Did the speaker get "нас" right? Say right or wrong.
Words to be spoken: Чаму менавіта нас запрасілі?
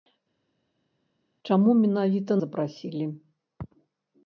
wrong